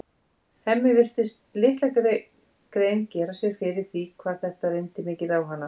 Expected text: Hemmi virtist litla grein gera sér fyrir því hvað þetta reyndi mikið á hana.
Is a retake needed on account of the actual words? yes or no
no